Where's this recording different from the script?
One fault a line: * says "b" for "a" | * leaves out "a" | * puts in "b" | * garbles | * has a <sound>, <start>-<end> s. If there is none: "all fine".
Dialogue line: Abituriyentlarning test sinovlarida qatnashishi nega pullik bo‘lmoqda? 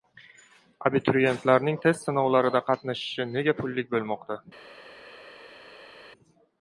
all fine